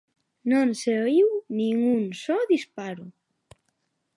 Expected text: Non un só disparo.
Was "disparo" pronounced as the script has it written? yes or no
yes